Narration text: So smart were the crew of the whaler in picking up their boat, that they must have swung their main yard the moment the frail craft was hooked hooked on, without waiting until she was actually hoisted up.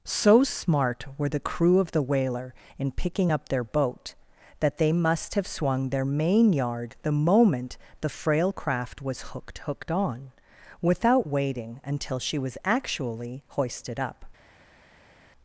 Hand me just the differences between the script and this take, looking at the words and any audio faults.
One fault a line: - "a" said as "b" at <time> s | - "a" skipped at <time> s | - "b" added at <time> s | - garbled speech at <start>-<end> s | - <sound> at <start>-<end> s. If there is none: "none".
none